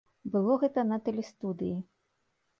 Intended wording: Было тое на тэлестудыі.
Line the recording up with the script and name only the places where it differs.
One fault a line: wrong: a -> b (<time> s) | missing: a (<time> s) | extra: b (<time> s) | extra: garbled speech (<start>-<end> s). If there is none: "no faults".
wrong: тое -> гэта (0.6 s)